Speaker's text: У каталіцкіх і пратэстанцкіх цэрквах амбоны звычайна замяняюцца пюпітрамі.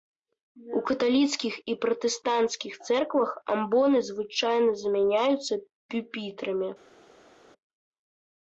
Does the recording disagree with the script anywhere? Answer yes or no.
no